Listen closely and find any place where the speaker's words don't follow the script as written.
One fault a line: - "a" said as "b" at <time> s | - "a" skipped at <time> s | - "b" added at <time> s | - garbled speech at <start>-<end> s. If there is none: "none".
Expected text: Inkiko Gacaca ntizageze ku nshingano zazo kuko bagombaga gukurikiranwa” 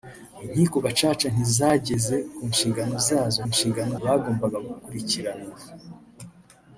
- "kuko" said as "nshingano" at 3.5 s